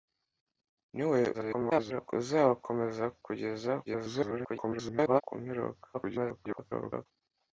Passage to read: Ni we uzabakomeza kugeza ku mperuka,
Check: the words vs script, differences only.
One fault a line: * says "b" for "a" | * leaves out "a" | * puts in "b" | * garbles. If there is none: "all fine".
* garbles
* garbles
* garbles